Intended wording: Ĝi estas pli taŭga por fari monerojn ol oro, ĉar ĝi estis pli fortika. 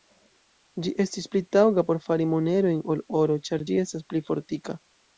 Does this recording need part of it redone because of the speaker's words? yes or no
yes